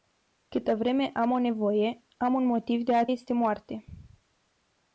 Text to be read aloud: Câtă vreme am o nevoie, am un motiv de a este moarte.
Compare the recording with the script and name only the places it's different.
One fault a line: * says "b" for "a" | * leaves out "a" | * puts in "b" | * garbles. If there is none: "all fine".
all fine